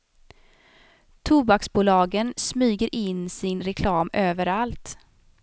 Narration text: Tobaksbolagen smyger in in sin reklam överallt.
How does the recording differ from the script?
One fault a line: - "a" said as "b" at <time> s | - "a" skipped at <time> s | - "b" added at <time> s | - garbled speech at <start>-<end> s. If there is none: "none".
- "in" skipped at 3.3 s